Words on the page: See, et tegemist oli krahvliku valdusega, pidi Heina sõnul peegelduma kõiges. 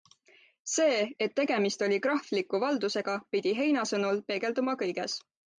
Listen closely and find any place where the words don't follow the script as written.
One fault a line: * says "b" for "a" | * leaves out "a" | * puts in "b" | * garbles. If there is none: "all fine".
all fine